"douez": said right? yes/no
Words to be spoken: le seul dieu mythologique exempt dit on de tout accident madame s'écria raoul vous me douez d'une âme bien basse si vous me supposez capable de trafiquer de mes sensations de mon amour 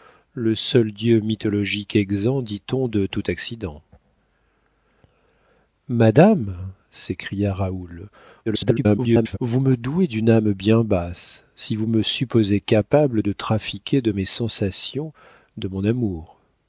yes